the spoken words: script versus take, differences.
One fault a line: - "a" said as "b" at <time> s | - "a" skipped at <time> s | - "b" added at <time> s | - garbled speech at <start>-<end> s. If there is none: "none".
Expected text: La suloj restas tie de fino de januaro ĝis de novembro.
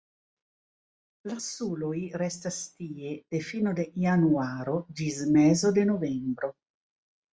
- "mezo" added at 5.4 s